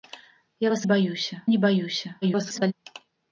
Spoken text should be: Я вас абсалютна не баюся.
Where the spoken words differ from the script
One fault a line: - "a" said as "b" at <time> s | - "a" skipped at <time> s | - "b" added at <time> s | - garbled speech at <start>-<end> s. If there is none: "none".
- "абсалютна" said as "баюся" at 0.8 s
- garbled speech at 2.2-2.7 s